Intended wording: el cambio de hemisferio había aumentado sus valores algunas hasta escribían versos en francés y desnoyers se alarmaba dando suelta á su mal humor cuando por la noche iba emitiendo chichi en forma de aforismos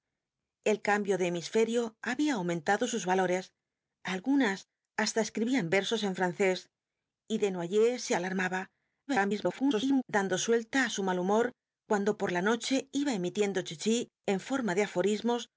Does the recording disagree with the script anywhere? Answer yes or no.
yes